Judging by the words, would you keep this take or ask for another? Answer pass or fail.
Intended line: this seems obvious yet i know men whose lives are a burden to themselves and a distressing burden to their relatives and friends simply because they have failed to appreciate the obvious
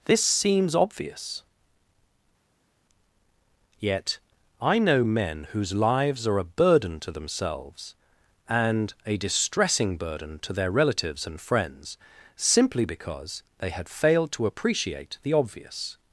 fail